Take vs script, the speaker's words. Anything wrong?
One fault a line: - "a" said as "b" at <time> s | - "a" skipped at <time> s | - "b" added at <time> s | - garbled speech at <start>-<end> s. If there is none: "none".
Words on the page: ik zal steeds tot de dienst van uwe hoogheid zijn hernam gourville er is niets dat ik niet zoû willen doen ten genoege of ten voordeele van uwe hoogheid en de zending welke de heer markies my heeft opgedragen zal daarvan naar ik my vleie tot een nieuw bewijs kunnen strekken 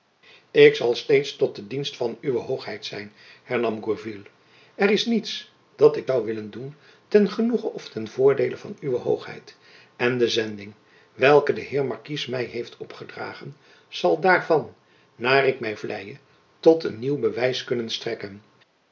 - "niet" skipped at 6.1 s